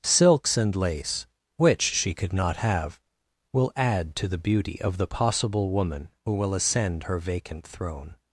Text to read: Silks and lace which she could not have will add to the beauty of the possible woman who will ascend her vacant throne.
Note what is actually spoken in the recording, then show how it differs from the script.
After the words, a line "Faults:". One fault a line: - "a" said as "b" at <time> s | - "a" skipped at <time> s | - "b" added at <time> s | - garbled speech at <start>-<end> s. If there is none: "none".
Silks and lace which she could not have will add to the beauty of the possible woman who will ascend her vacant throne.
Faults:
none